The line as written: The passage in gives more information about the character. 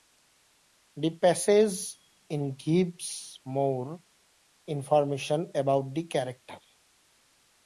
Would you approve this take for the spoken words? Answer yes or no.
yes